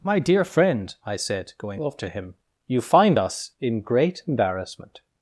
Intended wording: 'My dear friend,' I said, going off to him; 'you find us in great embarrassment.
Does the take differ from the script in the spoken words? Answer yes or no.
no